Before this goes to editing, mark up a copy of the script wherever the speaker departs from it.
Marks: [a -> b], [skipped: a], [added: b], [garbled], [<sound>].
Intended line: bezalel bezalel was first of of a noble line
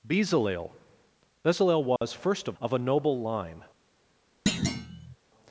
bezalel bezalel was [dropout] first of of a noble line [thud]